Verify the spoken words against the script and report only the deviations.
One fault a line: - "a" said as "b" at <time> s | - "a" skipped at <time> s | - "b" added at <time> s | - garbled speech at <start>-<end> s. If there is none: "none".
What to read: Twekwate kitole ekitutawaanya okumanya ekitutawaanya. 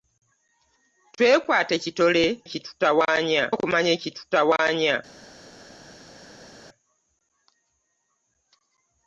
none